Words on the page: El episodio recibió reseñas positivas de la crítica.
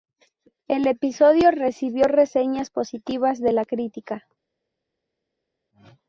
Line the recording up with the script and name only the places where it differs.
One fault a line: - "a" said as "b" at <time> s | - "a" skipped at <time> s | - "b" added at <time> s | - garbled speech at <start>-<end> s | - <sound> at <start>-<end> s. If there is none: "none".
none